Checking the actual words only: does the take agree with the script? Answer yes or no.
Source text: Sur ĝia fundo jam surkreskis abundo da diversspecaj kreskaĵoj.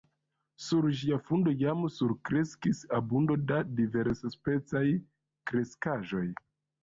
yes